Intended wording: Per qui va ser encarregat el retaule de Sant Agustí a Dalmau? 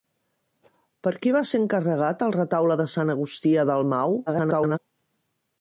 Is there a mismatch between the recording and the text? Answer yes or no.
yes